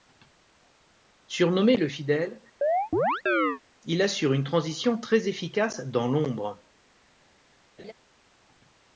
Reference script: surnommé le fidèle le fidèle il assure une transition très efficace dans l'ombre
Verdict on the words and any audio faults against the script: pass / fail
fail